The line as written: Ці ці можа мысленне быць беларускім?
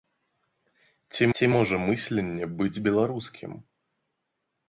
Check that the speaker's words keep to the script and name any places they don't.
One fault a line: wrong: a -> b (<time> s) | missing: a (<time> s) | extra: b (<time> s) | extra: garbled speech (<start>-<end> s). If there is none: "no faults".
no faults